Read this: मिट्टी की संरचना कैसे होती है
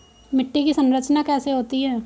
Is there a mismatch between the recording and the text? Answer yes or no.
no